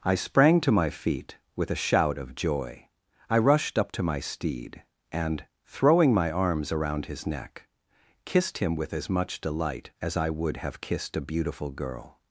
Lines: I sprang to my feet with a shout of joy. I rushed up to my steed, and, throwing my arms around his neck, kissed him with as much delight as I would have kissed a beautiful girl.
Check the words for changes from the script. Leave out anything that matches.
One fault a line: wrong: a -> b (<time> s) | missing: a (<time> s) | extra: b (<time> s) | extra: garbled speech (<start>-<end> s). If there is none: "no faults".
no faults